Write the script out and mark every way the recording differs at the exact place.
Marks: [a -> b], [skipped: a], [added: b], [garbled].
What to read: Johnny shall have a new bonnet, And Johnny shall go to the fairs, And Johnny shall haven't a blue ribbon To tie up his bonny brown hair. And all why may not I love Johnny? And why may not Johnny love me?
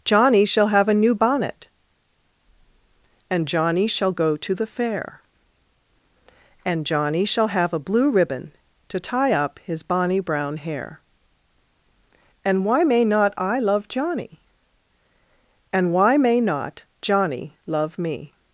Johnny shall have a new bonnet, And Johnny shall go to the [fairs, -> fair] And Johnny shall [haven't -> have] a blue ribbon To tie up his bonny brown hair. And [skipped: all] why may not I love Johnny? And why may not Johnny love me?